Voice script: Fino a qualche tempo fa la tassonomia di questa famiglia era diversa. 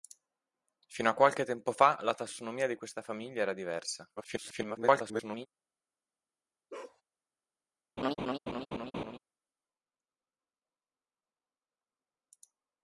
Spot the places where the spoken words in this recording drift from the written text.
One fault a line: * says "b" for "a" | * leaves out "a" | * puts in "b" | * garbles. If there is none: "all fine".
* garbles